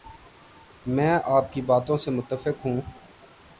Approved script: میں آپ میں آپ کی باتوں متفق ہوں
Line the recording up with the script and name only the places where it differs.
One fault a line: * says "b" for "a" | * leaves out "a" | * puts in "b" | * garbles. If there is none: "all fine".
* leaves out "میں آپ"
* puts in "سے"